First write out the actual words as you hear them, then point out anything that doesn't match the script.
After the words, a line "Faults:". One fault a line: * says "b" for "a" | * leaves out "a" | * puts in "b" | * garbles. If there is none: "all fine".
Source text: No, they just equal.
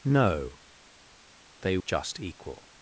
No, they just equal.
Faults:
all fine